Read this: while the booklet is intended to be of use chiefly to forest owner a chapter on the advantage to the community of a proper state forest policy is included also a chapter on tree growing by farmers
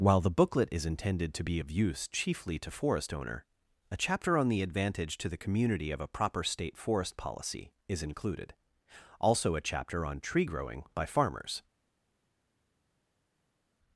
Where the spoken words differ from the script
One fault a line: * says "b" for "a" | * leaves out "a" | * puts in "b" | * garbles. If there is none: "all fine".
all fine